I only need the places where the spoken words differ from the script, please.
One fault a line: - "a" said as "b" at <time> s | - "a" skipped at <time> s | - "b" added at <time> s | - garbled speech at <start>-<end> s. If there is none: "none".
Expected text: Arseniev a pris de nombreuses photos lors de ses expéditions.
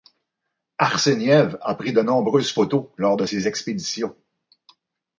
none